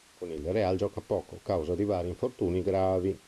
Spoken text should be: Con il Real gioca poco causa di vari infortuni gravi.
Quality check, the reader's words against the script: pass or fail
pass